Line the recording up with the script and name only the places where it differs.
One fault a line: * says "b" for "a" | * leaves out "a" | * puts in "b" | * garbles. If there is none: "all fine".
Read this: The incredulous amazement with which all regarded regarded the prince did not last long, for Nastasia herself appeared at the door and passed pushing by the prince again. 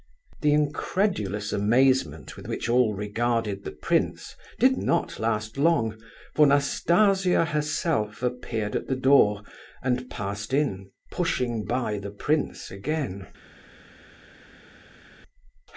* leaves out "regarded"
* puts in "in"